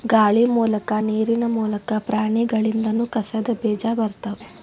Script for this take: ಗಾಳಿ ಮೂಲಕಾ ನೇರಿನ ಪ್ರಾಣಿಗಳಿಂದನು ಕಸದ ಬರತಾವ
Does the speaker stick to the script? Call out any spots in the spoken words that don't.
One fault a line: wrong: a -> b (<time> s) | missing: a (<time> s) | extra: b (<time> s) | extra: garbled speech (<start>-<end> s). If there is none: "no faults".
extra: ಮೂಲಕಾ (1.5 s)
extra: ಬೇಜಾ (3.6 s)